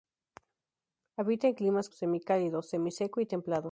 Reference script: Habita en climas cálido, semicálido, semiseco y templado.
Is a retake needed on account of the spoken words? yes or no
yes